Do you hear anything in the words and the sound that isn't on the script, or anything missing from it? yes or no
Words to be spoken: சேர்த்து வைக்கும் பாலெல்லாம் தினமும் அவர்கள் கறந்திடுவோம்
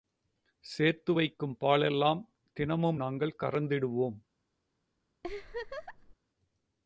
yes